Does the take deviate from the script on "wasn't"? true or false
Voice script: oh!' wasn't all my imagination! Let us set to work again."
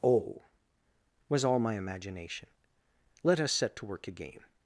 true